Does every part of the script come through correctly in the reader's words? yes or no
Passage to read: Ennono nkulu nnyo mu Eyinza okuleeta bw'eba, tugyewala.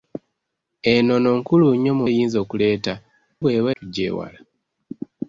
yes